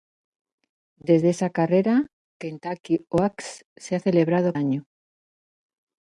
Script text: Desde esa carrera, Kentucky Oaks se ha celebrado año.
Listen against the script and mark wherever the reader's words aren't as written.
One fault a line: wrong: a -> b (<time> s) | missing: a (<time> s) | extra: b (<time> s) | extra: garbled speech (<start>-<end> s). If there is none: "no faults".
no faults